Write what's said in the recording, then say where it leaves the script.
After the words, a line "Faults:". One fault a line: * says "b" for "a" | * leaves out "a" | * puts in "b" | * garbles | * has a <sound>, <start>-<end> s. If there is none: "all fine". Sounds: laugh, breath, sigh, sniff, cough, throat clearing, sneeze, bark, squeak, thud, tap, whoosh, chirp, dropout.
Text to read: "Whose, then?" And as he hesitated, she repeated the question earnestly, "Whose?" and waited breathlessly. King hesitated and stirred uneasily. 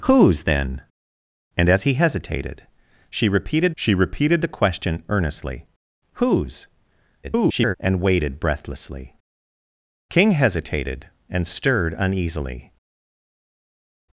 "Whose, then?" And as he hesitated, she repeated she repeated the question earnestly, "Whose?" [garbled] and waited breathlessly. King hesitated and stirred uneasily.
Faults:
* puts in "she repeated"
* garbles